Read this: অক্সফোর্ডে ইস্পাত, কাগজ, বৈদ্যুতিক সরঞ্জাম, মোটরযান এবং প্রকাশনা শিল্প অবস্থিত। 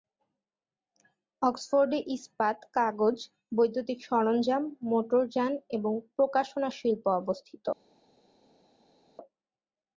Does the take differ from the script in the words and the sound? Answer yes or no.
no